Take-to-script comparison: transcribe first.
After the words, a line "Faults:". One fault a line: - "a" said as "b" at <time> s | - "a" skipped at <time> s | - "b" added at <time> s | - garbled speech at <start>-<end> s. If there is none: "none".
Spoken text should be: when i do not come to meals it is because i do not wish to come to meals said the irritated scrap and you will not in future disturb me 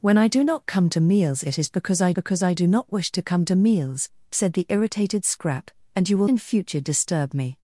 when i do not come to meals it is because i because i do not wish to come to meals said the irritated scrap and you will in future disturb me
Faults:
- "because i" added at 2.1 s
- "not" skipped at 6.3 s